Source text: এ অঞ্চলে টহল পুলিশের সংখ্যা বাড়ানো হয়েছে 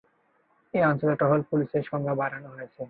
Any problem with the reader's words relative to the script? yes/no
no